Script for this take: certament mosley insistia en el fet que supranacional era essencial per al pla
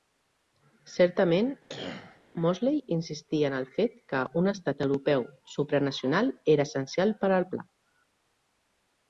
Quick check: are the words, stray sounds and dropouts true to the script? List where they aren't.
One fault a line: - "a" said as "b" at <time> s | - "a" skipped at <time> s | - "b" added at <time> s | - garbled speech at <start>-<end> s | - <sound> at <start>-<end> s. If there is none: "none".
- cough at 1.7-2.2 s
- "un estat europeu" added at 4.4 s